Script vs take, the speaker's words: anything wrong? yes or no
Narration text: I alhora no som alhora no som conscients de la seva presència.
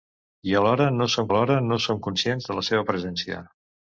no